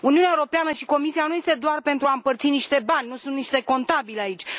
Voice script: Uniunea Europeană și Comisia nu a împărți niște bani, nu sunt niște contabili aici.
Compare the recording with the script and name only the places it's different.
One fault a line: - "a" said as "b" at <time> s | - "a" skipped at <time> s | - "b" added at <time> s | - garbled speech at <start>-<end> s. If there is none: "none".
- "sunt doar pentru" added at 1.4 s